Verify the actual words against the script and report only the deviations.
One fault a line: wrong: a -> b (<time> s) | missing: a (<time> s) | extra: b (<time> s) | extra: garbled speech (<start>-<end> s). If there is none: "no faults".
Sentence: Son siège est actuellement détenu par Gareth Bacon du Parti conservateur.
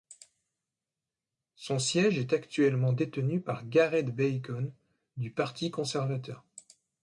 no faults